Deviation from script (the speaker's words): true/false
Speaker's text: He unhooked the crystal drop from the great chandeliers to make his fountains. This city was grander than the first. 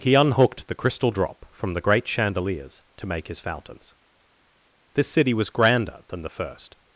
false